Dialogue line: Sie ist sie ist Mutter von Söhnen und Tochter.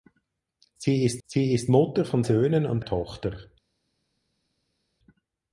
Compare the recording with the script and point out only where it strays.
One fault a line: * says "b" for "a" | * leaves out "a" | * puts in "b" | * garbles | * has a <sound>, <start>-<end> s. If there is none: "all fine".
all fine